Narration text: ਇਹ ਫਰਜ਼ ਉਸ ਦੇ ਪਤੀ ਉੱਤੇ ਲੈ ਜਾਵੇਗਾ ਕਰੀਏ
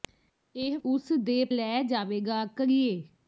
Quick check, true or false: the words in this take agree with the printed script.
false